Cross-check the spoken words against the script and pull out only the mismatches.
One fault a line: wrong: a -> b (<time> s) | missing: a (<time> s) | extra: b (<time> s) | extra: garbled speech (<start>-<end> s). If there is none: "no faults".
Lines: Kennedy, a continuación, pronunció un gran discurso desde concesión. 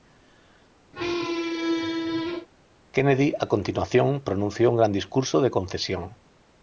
wrong: desde -> de (5.4 s)